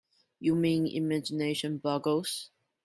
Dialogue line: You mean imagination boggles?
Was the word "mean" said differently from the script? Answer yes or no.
no